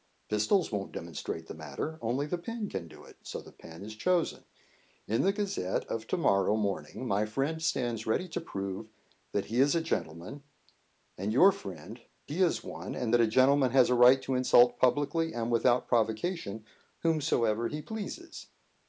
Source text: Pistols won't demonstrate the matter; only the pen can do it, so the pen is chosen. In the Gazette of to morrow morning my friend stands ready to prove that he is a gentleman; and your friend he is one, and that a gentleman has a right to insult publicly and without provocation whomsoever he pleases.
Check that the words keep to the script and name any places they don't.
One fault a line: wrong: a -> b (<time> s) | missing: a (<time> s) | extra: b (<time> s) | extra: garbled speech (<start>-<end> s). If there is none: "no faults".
no faults